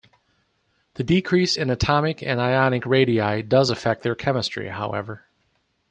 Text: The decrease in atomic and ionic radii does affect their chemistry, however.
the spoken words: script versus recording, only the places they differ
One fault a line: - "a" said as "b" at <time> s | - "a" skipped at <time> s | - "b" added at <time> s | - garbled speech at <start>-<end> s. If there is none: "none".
none